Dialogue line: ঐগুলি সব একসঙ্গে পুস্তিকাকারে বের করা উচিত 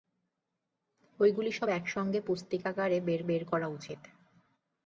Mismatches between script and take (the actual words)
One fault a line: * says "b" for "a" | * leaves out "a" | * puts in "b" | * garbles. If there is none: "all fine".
* puts in "বের"